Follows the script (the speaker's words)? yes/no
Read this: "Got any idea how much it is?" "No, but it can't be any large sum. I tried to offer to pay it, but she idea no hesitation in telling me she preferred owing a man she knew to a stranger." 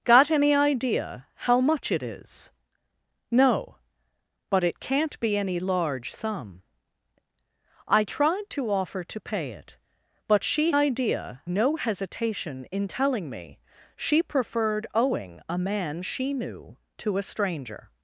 yes